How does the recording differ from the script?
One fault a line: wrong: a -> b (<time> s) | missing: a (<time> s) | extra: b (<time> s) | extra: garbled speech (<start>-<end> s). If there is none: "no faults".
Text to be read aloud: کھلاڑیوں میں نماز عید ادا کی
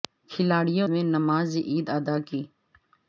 no faults